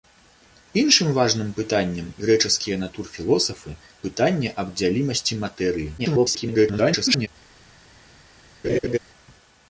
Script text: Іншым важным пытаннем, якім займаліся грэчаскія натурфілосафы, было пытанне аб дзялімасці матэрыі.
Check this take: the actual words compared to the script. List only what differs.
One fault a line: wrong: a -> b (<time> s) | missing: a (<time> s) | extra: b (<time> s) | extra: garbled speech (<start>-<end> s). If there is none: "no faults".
missing: якім займаліся (2.1 s)
missing: было (3.7 s)
extra: garbled speech (6.0-7.3 s)